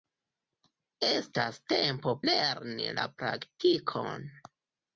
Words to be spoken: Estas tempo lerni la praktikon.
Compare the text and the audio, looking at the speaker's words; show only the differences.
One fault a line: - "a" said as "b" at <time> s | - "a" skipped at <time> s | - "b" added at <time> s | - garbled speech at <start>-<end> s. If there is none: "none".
none